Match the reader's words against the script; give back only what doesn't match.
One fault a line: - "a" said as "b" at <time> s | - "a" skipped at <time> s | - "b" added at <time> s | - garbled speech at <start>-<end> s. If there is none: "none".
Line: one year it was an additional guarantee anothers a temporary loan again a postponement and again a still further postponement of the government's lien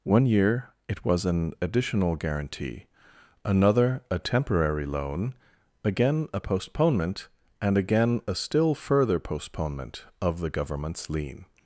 - "anothers" said as "another" at 3.5 s